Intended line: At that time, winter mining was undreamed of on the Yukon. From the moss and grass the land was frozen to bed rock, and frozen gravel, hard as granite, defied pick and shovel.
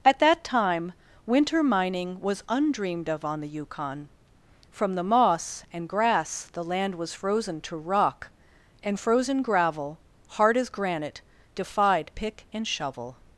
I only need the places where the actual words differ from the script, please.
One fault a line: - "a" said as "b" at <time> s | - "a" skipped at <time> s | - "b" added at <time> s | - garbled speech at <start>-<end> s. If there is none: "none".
- "bed" skipped at 7.7 s